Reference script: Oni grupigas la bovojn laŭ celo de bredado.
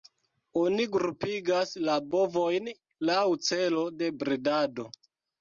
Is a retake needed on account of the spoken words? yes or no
no